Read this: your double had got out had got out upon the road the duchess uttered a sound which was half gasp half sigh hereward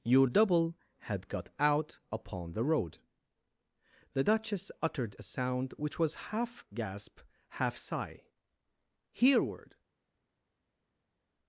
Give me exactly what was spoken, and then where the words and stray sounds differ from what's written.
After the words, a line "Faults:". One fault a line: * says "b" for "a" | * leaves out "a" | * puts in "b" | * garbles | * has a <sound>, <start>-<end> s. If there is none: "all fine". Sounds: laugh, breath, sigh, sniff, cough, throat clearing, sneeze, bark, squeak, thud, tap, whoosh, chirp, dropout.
your double had got out upon the road the duchess uttered a sound which was half gasp half sigh hereward
Faults:
* leaves out "had got out"